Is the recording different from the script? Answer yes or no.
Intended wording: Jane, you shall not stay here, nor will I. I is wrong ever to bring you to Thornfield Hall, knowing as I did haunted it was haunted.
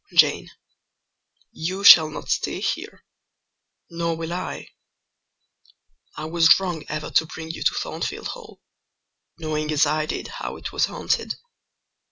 yes